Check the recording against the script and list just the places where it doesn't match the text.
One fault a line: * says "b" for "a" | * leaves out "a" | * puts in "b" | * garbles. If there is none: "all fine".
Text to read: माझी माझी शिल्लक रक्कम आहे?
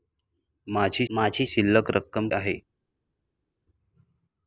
all fine